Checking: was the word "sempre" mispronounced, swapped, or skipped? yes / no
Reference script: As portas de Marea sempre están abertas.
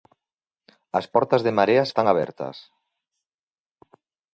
yes